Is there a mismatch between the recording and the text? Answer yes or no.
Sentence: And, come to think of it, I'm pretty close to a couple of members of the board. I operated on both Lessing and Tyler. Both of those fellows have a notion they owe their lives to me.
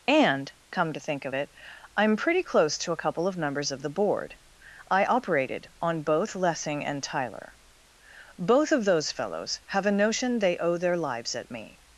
yes